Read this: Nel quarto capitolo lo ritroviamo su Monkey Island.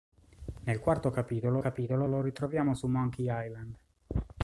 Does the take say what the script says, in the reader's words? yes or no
no